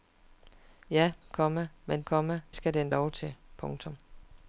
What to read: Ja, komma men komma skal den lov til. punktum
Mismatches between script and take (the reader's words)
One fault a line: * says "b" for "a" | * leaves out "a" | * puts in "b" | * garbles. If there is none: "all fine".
all fine